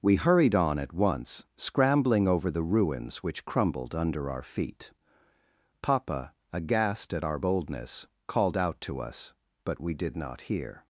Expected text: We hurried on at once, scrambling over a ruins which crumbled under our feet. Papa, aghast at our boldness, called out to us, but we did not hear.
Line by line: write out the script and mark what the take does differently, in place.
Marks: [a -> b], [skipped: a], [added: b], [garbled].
We hurried on at once, scrambling over [a -> the] ruins which crumbled under our feet. Papa, aghast at our boldness, called out to us, but we did not hear.